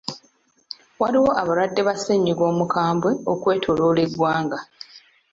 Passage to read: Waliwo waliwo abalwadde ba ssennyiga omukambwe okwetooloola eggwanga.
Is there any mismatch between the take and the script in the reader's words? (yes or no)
yes